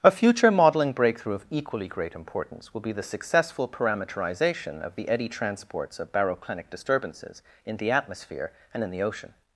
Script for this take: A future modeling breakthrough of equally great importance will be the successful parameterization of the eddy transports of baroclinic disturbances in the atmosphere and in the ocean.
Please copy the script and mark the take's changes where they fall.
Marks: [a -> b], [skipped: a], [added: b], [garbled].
A future modeling breakthrough of equally great importance will be the successful parameterization of the eddy transports of baroclinic disturbances in the atmosphere and in the ocean.